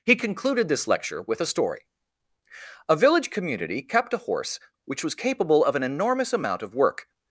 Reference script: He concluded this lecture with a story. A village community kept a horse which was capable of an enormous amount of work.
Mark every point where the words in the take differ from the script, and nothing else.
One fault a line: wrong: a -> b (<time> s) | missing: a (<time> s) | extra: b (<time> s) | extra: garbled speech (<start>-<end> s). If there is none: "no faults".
no faults